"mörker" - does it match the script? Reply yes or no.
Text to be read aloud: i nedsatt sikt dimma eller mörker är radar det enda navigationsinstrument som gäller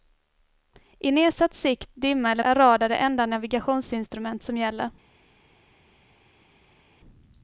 no